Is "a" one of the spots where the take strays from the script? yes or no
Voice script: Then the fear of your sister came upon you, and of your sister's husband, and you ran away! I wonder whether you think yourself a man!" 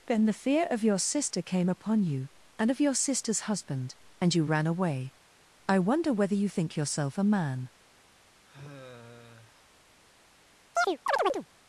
no